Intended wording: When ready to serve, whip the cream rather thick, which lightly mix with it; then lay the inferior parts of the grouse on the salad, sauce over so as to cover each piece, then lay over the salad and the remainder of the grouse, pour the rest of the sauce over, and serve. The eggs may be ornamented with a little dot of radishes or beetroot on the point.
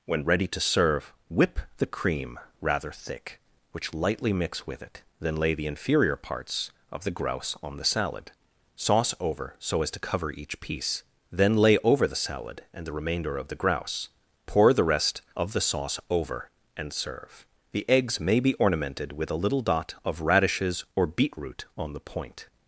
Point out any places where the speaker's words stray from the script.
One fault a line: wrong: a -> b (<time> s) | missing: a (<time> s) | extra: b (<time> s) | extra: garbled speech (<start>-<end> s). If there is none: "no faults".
no faults